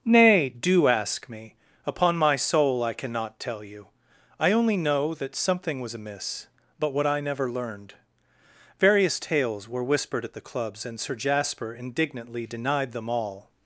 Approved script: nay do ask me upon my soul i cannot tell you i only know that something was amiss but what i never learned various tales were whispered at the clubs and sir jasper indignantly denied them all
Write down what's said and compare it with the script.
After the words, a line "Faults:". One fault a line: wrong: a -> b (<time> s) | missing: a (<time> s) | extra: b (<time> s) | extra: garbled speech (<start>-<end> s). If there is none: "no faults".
nay do ask me upon my soul i cannot tell you i only know that something was amiss but what i never learned various tales were whispered at the clubs and sir jasper indignantly denied them all
Faults:
no faults